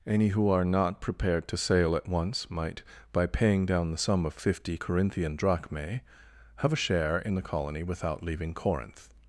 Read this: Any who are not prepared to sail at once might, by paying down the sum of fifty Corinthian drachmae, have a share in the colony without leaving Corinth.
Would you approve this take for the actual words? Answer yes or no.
yes